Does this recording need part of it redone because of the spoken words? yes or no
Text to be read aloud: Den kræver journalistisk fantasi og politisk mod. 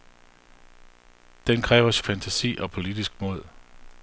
yes